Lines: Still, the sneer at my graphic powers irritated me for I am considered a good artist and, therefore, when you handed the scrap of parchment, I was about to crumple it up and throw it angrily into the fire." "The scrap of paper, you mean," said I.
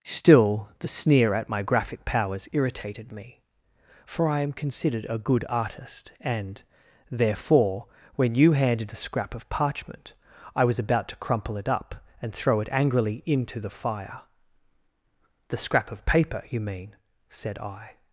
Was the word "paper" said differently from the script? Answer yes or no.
no